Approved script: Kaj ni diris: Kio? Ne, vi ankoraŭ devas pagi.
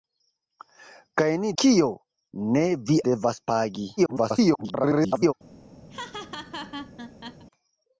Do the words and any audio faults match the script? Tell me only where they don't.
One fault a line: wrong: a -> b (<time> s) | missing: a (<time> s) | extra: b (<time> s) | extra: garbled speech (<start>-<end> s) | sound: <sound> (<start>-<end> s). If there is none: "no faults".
missing: diris (1.5 s)
missing: ankoraŭ (3.0 s)
extra: garbled speech (4.0-5.3 s)
sound: laugh (5.9-7.4 s)